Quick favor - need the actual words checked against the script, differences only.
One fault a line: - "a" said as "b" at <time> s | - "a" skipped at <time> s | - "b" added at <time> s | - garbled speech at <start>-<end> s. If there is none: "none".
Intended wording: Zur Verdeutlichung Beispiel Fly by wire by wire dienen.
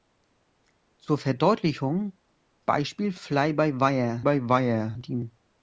none